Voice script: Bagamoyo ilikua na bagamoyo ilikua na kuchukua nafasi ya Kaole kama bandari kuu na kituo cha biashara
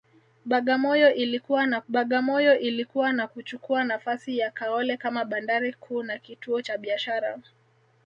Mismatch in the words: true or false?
false